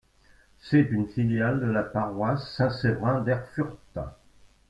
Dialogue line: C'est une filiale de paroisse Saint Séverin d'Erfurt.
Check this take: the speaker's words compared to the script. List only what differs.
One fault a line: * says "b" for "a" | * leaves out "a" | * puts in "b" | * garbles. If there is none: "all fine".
* puts in "la"